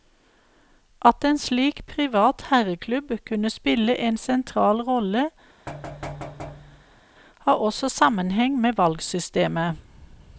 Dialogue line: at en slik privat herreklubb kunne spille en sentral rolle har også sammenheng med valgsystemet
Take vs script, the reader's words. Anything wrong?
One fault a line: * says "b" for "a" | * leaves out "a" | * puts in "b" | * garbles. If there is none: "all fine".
all fine